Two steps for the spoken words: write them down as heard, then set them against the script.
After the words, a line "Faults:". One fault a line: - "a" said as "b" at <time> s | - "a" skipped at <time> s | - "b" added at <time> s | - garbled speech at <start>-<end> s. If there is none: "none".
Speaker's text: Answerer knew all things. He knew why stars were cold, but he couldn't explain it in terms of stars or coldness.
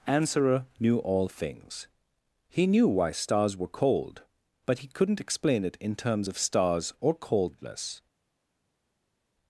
Answerer knew all things. He knew why stars were cold, but he couldn't explain it in terms of stars or coldness.
Faults:
none